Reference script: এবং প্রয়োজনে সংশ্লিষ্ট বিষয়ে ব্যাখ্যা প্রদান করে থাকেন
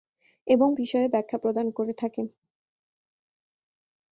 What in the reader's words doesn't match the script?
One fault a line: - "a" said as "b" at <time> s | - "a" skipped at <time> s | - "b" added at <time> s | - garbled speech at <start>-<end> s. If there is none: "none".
- "প্রয়োজনে সংশ্লিষ্ট" skipped at 0.7 s